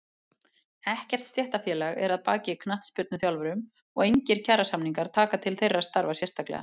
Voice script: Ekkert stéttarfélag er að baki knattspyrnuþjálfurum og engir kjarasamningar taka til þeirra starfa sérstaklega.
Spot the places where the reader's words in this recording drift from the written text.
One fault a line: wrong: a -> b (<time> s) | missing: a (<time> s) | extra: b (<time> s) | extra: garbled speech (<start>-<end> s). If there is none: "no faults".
no faults